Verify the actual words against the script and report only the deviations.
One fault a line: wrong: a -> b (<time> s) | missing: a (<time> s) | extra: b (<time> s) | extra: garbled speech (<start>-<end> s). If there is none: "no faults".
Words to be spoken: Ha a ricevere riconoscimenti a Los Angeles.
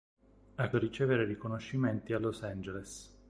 no faults